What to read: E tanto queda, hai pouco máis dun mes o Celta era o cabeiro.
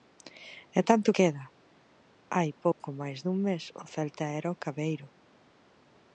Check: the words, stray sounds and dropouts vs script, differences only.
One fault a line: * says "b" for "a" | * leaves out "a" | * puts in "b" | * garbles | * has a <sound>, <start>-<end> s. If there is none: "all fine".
* has a dropout, 2.7-2.8 s